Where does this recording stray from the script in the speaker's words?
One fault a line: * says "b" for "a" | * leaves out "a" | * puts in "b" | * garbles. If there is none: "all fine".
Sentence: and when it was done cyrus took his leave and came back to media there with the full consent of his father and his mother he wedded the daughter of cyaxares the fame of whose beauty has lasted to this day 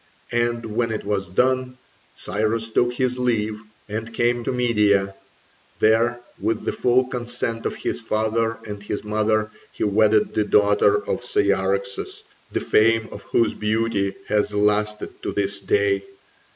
* leaves out "back"